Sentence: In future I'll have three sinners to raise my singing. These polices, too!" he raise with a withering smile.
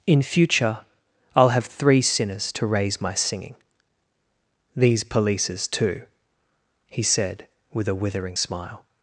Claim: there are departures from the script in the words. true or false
true